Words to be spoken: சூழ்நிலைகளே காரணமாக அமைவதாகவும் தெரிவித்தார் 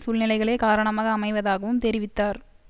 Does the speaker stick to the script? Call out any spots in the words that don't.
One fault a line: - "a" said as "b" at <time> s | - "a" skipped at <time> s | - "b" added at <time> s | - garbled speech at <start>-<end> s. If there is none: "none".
none